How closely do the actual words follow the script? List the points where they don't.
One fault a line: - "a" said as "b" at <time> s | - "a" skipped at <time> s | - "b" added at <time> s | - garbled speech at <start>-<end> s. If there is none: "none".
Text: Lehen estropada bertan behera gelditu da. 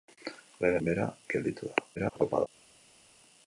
- "estropada bertan" skipped at 0.8 s
- garbled speech at 2.0-2.5 s